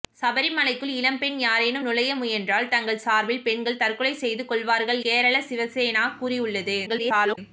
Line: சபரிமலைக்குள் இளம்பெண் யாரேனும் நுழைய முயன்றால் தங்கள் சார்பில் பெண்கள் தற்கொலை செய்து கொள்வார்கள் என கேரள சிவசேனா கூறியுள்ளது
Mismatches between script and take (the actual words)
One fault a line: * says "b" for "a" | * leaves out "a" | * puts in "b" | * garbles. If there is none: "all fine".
* leaves out "என"
* garbles